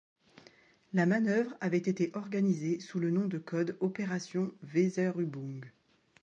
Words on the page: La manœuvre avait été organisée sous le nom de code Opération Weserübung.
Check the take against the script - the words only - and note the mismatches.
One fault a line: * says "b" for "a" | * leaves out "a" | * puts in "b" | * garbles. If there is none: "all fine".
all fine